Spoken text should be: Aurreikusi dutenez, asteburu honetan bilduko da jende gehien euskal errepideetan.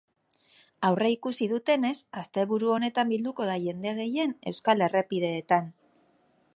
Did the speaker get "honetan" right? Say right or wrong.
right